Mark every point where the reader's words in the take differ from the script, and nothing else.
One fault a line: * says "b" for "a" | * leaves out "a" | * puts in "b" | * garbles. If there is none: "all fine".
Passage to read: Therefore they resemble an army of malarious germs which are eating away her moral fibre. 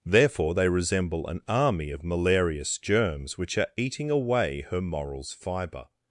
* says "morals" for "moral"